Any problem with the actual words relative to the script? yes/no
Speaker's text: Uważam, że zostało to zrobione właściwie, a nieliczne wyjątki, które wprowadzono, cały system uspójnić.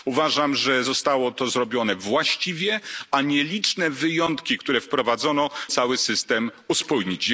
no